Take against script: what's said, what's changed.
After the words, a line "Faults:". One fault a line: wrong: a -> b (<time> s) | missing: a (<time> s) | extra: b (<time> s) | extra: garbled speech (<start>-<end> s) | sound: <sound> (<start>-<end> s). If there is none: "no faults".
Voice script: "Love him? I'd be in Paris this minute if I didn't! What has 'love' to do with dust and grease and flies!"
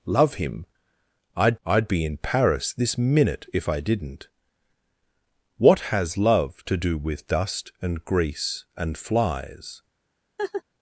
"Love him? I'd I'd be in Paris this minute if I didn't! What has 'love' to do with dust and grease and flies!"
Faults:
extra: I'd (1.6 s)
sound: laugh (10.4-10.6 s)